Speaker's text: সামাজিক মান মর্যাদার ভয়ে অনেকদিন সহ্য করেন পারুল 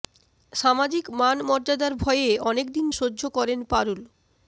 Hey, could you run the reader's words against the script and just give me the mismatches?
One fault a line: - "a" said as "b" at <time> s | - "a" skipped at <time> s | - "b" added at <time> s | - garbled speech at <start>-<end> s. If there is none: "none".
none